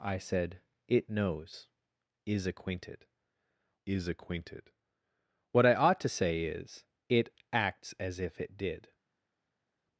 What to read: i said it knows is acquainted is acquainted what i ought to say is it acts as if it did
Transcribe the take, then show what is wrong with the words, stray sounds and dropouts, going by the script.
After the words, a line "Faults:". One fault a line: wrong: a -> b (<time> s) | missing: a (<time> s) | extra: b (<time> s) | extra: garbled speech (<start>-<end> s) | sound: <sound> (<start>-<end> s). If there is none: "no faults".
i said it knows is acquainted is acquainted what i ought to say is it acts as if it did
Faults:
no faults